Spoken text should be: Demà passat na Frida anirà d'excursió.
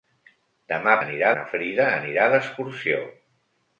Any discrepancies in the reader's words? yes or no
yes